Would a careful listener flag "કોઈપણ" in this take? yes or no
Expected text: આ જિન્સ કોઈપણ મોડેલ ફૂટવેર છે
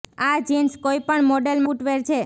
no